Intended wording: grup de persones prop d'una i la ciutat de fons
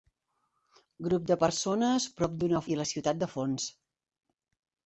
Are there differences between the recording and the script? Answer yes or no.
no